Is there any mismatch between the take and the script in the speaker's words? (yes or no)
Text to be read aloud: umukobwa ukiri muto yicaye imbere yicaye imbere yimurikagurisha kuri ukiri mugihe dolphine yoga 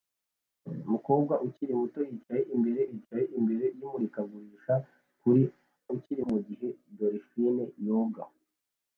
no